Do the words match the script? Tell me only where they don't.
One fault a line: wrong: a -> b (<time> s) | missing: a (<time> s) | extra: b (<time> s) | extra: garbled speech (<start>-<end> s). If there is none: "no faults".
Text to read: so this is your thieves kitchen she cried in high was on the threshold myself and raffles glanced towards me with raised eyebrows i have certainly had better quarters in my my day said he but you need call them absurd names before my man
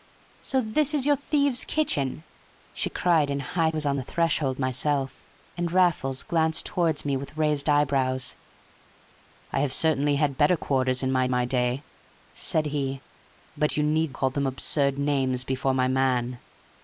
no faults